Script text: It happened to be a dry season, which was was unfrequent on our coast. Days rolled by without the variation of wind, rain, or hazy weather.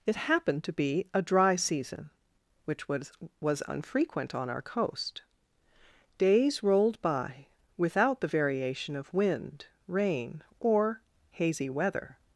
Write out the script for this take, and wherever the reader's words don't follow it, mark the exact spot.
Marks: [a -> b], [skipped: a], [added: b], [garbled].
It happened to be a dry season, which was was unfrequent on our coast. Days rolled by without the variation of wind, rain, or hazy weather.